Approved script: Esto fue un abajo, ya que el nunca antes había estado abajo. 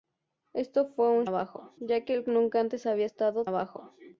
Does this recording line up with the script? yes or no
yes